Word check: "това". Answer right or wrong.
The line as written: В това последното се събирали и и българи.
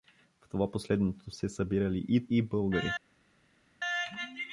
right